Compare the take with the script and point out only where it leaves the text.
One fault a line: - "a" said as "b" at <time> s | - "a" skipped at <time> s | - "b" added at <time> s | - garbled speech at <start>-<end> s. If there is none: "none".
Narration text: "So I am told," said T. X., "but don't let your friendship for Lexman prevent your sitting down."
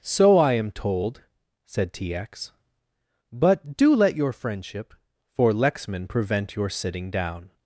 - "don't" said as "do" at 3.8 s